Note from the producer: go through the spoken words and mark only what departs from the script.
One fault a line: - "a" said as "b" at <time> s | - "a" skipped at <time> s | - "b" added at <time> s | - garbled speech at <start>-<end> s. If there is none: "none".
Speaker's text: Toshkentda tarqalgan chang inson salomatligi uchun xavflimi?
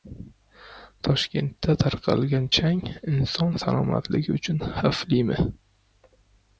none